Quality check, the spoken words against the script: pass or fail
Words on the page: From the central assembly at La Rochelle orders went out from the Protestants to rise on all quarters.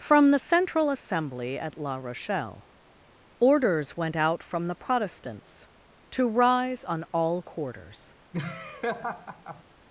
pass